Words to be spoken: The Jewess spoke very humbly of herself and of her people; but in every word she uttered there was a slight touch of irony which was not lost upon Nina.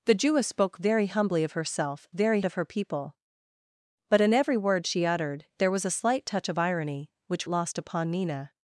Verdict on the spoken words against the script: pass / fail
fail